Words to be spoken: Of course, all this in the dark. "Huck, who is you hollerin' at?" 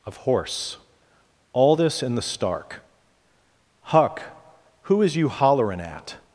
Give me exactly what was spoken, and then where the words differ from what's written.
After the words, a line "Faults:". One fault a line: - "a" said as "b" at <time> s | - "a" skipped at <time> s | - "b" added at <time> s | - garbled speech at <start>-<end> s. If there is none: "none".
Of horse, all this in the stark. "Huck, who is you hollerin' at?"
Faults:
- "course" said as "horse" at 0.2 s
- "dark" said as "stark" at 2.2 s